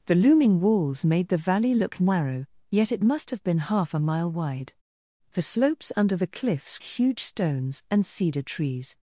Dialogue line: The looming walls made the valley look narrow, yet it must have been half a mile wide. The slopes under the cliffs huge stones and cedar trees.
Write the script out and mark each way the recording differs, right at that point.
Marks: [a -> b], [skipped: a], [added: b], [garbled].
The looming walls made the valley look narrow, yet it must have been half a mile wide. The slopes under the cliffs huge stones and cedar trees.